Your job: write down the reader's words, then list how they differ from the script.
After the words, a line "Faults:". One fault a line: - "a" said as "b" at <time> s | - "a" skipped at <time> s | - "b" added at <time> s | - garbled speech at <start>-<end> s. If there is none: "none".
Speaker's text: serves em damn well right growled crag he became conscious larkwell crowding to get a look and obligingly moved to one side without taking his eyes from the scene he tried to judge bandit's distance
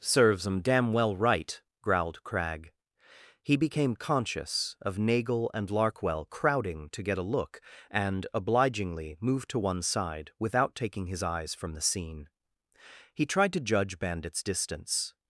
serves em damn well right growled crag he became conscious of nagel and larkwell crowding to get a look and obligingly moved to one side without taking his eyes from the scene he tried to judge bandit's distance
Faults:
- "of nagel and" added at 4.8 s